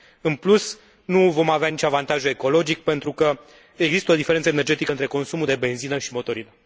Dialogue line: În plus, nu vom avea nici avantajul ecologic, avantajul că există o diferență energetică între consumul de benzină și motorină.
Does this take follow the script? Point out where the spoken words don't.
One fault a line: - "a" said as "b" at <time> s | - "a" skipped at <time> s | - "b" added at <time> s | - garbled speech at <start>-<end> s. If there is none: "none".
- "avantajul" said as "pentru" at 2.8 s